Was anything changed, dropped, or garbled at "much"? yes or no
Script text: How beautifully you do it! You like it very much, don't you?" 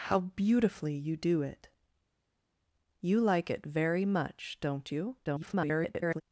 no